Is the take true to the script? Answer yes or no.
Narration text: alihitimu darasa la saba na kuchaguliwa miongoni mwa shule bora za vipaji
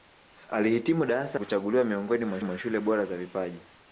no